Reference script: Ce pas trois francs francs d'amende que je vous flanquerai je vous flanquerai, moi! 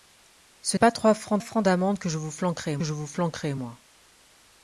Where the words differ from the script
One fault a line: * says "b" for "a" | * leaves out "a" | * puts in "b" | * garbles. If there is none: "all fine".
all fine